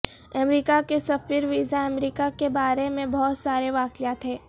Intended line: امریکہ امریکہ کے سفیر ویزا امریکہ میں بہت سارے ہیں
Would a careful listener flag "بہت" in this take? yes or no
no